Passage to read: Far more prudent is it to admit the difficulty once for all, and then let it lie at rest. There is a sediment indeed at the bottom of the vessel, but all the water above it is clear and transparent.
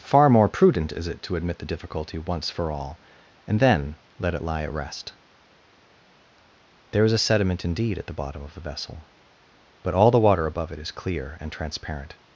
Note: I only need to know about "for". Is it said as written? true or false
true